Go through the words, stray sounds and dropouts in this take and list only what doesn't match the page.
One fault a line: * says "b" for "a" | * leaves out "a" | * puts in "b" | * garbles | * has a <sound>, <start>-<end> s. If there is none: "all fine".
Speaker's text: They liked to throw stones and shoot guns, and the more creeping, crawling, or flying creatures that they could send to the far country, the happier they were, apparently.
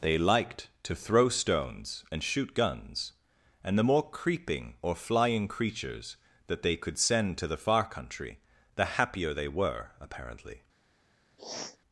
* leaves out "crawling"
* has a sniff, 11.4-11.8 s